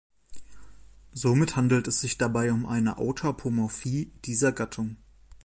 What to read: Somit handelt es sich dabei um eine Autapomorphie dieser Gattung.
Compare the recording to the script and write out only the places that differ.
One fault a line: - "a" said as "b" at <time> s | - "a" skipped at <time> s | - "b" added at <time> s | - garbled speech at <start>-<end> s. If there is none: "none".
none